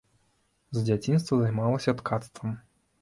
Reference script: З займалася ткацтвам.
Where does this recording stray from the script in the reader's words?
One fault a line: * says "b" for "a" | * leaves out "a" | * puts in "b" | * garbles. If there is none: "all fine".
* puts in "дзяцінства"